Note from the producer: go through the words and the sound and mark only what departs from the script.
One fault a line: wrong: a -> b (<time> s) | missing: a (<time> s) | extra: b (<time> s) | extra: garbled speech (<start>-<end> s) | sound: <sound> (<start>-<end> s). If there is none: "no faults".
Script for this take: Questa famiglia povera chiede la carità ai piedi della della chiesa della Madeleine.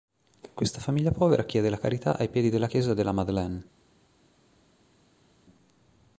missing: della (2.7 s)